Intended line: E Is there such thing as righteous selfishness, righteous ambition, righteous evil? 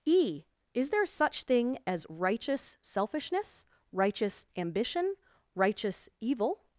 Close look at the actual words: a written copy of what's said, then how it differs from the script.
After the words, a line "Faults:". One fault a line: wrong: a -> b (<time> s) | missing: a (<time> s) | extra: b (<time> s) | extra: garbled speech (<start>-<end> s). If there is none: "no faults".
E Is there such thing as righteous selfishness, righteous ambition, righteous evil?
Faults:
no faults